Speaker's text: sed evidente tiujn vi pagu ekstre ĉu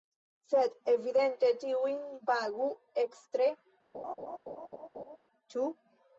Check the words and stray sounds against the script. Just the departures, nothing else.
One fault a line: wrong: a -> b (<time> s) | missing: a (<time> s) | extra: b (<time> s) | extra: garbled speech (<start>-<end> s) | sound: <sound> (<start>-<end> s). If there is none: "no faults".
missing: vi (2.0 s)
sound: laugh (3.9-5.2 s)